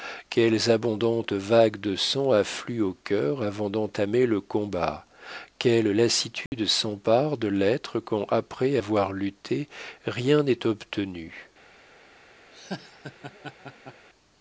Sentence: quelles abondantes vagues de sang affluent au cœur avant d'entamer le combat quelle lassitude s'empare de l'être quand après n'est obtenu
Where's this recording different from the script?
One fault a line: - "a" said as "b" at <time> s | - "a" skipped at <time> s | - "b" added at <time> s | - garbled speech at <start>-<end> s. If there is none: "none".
- "avoir lutté rien" added at 8.7 s